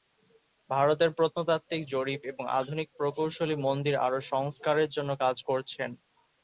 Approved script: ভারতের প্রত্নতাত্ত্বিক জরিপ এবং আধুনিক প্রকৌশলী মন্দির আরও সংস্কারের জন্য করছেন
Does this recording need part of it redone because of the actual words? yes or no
yes